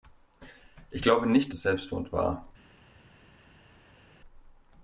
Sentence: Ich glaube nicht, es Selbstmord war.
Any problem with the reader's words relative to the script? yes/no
no